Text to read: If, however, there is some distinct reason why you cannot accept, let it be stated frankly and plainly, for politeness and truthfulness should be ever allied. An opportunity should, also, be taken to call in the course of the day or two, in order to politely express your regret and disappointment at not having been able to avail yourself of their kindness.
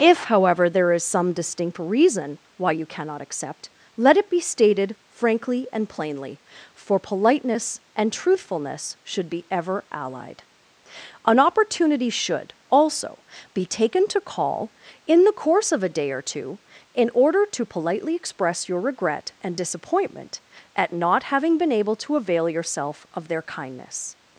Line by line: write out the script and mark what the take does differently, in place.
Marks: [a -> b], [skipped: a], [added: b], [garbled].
If, however, there is some distinct reason why you cannot accept, let it be stated frankly and plainly, for politeness and truthfulness should be ever allied. An opportunity should, also, be taken to call in the course of [the -> a] day or two, in order to politely express your regret and disappointment at not having been able to avail yourself of their kindness.